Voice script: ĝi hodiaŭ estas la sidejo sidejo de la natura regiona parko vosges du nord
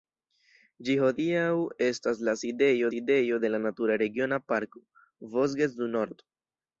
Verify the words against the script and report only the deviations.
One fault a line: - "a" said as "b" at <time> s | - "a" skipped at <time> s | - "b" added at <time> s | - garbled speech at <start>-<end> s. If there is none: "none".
none